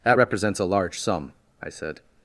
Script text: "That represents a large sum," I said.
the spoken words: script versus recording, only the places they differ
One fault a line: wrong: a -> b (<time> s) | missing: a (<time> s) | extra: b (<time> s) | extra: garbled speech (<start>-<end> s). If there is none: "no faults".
no faults